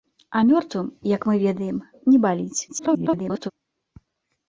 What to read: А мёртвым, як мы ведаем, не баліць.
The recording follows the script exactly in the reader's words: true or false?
false